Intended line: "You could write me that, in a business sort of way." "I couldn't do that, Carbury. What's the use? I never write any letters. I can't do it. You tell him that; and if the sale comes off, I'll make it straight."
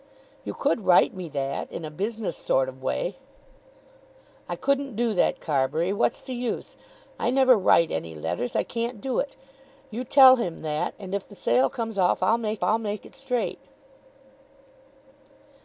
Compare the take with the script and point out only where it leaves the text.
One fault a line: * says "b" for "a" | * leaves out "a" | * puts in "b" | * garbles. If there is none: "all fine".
* puts in "I'll make"